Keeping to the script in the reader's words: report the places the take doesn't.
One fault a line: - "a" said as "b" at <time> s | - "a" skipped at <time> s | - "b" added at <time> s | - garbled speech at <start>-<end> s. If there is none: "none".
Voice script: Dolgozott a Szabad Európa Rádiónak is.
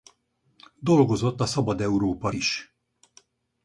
- "Rádiónak" skipped at 2.3 s